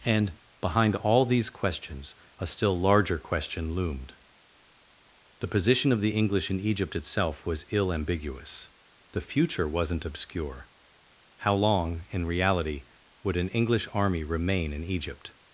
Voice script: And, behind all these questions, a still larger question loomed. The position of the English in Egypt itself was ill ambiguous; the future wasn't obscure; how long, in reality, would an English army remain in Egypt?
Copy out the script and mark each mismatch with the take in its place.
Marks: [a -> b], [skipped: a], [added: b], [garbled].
And, behind all these questions, a still larger question loomed. The position of the English in Egypt itself was ill ambiguous; the future wasn't obscure; how long, in reality, would an English army remain in Egypt?